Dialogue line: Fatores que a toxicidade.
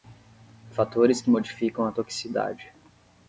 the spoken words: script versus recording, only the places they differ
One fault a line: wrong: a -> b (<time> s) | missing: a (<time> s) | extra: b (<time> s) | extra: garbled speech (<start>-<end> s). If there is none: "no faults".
extra: modificam (1.3 s)